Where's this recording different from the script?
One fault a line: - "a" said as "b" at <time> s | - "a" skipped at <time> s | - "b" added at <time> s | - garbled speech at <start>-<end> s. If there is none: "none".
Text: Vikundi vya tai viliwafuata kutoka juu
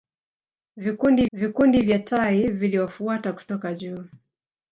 - "vikundi" added at 1.3 s